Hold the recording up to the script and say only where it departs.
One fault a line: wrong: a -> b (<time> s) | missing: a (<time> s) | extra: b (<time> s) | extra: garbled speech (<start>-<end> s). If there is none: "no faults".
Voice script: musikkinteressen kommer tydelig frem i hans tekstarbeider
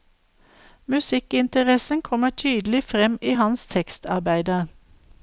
no faults